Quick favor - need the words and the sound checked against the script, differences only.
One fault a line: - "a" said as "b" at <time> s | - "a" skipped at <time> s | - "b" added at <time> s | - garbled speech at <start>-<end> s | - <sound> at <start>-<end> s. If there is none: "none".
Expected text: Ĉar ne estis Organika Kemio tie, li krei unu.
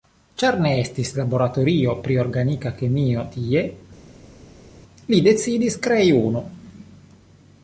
- "laboratorio pri" added at 1.2 s
- "decidis" added at 5.3 s